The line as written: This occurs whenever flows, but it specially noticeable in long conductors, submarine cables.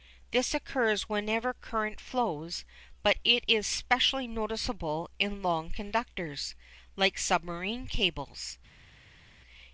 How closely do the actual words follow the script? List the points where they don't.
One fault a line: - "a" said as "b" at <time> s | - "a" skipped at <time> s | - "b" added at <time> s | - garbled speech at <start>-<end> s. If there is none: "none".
- "current" added at 1.5 s
- "is" added at 3.5 s
- "like" added at 7.0 s